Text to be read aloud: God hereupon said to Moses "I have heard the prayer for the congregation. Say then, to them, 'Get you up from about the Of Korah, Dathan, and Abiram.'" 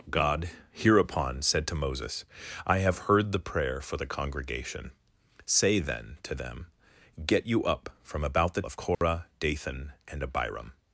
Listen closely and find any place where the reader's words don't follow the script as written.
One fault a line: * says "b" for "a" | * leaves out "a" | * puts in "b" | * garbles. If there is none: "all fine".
all fine